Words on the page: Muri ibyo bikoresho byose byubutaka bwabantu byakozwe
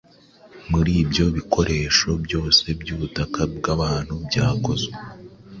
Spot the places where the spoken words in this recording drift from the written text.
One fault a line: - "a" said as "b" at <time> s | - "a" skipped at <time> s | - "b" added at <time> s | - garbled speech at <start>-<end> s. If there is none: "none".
none